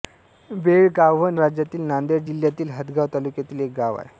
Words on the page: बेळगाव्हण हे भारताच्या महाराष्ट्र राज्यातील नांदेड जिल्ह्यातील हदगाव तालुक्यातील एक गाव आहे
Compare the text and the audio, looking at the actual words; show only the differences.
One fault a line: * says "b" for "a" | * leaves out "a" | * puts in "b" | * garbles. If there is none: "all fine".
* leaves out "हे भारताच्या महाराष्ट्र"